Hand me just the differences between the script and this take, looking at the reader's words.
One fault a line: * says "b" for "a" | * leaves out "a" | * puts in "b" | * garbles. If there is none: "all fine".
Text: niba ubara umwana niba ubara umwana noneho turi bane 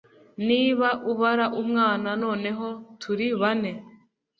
* leaves out "niba ubara umwana"